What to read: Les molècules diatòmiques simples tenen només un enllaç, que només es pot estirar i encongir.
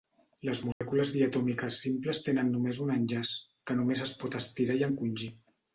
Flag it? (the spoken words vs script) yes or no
no